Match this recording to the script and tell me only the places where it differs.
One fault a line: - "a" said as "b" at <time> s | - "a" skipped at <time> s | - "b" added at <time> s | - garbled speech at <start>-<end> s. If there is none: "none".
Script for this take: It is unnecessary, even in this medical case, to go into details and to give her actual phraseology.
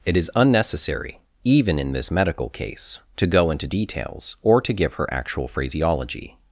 - "and" said as "or" at 4.4 s